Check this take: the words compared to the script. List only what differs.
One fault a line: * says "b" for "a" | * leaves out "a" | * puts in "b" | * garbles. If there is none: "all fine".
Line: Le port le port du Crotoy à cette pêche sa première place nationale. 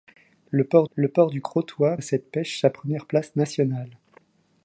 all fine